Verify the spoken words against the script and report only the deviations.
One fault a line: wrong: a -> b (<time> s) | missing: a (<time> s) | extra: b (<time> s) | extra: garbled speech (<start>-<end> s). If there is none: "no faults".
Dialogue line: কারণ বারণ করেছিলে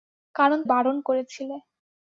no faults